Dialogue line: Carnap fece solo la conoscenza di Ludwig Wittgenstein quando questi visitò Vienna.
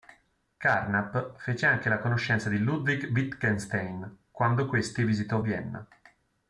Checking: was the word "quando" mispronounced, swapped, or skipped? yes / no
no